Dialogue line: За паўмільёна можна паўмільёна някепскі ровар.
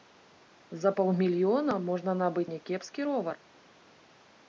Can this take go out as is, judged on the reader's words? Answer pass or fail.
fail